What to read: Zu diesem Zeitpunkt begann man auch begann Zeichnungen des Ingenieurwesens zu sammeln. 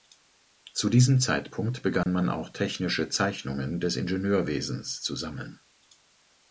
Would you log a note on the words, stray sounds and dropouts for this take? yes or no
yes